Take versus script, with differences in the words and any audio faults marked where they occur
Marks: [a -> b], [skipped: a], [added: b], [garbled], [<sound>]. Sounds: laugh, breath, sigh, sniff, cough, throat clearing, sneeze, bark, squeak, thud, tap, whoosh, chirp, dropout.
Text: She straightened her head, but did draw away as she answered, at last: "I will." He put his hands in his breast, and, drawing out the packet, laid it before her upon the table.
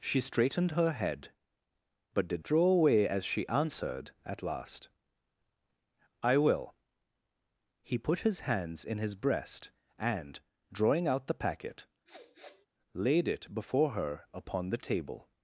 She straightened her head, but did draw away as she answered, at last: "I will." He put his hands in his breast, and, drawing out the packet, [sniff] laid it before her upon the table.